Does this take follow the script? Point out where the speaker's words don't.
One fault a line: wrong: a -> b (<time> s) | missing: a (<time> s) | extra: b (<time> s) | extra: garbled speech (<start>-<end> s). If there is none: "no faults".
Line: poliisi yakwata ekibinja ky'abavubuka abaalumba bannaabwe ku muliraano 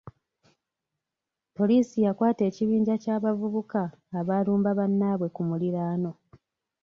no faults